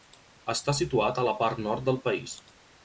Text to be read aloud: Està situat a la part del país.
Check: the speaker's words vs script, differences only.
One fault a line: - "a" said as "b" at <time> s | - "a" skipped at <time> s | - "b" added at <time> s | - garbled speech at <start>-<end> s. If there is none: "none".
- "nord" added at 1.7 s